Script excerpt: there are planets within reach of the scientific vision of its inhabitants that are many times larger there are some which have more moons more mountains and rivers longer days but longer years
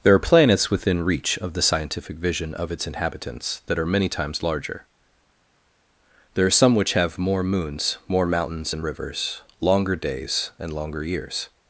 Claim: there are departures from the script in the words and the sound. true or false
true